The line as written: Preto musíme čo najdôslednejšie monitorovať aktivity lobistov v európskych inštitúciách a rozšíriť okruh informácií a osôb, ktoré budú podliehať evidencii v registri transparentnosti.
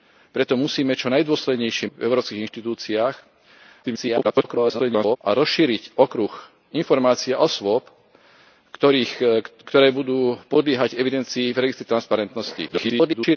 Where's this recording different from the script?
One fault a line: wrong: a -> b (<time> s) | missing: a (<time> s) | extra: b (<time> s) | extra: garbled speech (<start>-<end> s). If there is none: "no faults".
missing: monitorovať aktivity lobistov (1.9 s)
extra: garbled speech (3.8-5.2 s)
extra: garbled speech (12.7-13.4 s)